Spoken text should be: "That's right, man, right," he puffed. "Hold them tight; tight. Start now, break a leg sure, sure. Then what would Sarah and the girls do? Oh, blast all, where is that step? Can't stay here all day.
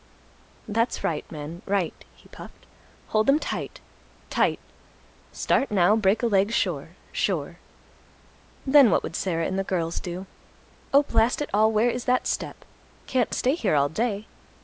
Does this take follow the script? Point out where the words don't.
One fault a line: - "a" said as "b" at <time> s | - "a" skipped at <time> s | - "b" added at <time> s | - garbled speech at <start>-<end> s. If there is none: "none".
- "it" added at 11.4 s